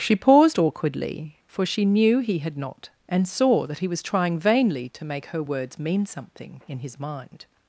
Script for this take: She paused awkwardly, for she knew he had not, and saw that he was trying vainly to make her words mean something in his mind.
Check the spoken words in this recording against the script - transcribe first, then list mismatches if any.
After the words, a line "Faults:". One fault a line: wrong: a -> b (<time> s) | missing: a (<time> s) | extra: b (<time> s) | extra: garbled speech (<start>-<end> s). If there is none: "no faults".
She paused awkwardly, for she knew he had not, and saw that he was trying vainly to make her words mean something in his mind.
Faults:
no faults